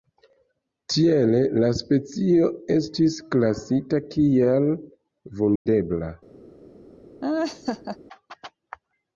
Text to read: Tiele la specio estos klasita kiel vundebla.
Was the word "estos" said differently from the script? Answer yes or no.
yes